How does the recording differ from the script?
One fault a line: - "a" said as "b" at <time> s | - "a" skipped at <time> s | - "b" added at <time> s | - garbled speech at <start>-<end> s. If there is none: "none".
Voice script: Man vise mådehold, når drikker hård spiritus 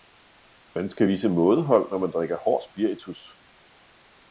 - "skal" added at 0.9 s
- "man" added at 2.0 s